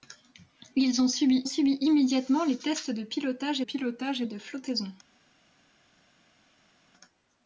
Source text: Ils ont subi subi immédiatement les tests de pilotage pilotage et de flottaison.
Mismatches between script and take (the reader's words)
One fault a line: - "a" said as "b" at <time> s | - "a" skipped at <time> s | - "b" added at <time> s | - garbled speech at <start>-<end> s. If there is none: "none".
none